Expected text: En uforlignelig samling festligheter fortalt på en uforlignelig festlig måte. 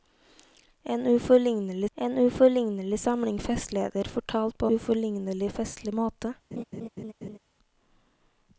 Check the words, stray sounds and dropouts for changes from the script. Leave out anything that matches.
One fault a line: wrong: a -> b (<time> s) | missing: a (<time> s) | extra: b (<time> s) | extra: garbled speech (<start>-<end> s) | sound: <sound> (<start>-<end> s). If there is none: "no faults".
extra: en uforlignelig (1.9 s)
missing: en (4.7 s)
sound: laugh (6.5-7.4 s)